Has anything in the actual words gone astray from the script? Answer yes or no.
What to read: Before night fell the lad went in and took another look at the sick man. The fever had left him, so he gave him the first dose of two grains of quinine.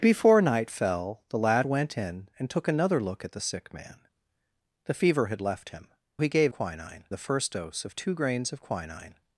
yes